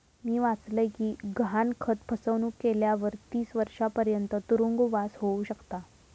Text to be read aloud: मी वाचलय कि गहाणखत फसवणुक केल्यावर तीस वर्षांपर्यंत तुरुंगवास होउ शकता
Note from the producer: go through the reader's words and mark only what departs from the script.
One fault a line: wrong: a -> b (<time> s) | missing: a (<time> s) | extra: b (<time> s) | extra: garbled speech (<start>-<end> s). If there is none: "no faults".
no faults